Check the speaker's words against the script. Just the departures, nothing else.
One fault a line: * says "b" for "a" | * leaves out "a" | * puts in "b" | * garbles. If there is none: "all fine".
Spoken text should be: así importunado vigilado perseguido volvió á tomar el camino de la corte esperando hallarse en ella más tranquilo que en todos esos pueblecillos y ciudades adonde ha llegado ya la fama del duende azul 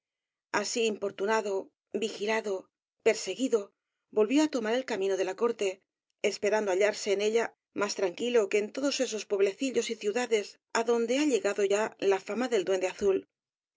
all fine